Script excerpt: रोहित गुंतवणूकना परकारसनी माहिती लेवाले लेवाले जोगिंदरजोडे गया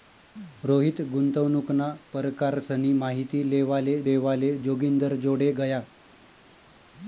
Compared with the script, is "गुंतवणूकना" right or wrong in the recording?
right